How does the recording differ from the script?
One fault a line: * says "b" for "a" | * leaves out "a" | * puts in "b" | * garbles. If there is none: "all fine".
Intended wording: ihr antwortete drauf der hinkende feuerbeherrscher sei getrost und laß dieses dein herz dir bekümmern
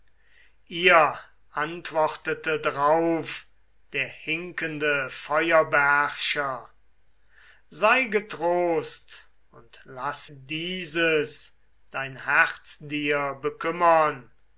all fine